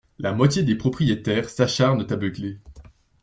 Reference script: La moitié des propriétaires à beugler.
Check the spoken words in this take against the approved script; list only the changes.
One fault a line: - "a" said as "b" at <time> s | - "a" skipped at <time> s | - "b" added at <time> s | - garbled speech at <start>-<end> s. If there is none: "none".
- "s'acharnent" added at 1.5 s